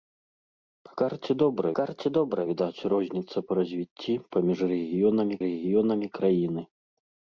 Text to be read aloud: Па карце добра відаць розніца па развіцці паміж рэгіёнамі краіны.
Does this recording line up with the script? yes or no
no